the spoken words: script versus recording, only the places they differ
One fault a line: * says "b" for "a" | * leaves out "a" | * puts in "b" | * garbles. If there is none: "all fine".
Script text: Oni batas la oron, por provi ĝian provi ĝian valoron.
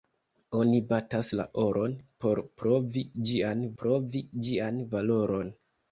all fine